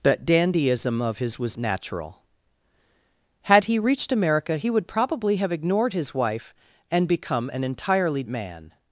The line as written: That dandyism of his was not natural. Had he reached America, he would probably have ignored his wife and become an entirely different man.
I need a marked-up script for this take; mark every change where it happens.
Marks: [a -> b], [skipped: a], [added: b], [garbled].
That dandyism of his was [skipped: not] natural. Had he reached America, he would probably have ignored his wife and become an entirely [skipped: different] man.